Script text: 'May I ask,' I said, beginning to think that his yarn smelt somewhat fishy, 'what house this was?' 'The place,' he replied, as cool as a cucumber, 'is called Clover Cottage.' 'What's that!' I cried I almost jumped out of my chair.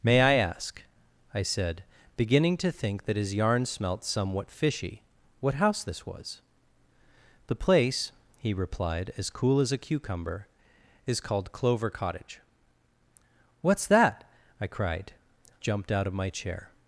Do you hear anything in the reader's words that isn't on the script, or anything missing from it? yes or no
yes